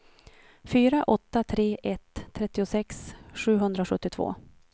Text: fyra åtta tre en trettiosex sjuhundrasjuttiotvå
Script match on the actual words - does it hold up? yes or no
no